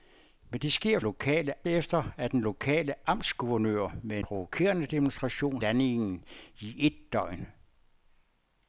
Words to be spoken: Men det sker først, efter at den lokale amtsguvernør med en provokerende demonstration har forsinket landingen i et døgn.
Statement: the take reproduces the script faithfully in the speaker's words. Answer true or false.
false